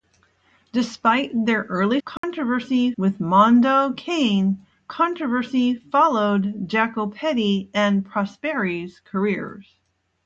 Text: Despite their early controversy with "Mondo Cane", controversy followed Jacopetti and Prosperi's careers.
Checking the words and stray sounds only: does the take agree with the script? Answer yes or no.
no